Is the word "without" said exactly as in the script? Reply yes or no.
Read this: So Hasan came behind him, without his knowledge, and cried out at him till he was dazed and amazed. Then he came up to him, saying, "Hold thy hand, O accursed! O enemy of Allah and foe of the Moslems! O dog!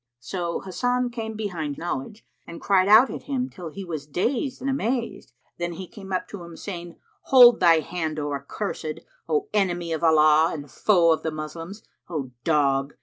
no